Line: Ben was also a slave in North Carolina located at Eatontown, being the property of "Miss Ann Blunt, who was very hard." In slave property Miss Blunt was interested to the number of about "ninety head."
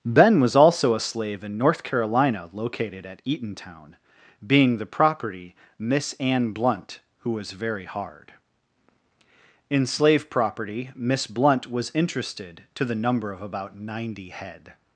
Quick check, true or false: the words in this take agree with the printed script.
false